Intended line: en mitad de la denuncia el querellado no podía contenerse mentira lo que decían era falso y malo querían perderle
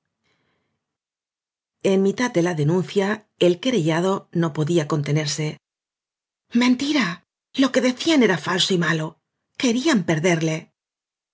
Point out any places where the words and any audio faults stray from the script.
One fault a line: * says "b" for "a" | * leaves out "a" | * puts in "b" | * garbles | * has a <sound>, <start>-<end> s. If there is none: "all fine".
all fine